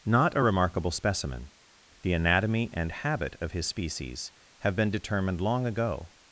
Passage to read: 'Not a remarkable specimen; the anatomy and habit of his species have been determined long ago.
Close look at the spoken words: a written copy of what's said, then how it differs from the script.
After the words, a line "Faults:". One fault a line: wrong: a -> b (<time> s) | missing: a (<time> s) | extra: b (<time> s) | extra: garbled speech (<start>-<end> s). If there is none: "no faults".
'Not a remarkable specimen; the anatomy and habit of his species have been determined long ago.
Faults:
no faults